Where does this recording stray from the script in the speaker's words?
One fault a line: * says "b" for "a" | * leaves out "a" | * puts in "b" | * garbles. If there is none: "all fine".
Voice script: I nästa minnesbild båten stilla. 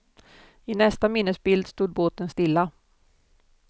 * puts in "stod"